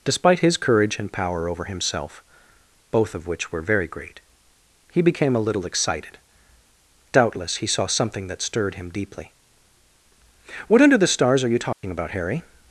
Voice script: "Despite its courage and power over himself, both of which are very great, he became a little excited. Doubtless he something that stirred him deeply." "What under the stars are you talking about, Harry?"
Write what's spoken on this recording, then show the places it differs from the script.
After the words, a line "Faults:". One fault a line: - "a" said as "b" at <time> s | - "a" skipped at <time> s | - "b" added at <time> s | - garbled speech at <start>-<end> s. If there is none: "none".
"Despite his courage and power over himself, both of which were very great, he became a little excited. Doubtless he saw something that stirred him deeply." "What under the stars are you talking about, Harry?"
Faults:
- "its" said as "his" at 0.4 s
- "are" said as "were" at 3.5 s
- "saw" added at 7.7 s